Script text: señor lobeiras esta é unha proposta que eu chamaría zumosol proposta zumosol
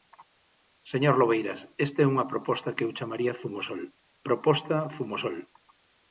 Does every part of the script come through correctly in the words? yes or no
yes